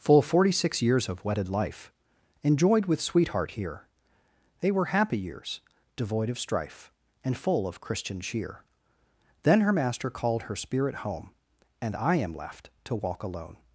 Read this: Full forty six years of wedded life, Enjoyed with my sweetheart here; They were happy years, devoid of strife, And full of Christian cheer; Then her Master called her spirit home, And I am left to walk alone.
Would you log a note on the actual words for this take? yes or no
yes